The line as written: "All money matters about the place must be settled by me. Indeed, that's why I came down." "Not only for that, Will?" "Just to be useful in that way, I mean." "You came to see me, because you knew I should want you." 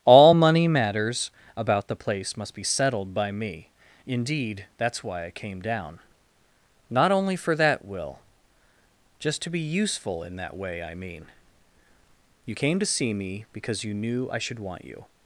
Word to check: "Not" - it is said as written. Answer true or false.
true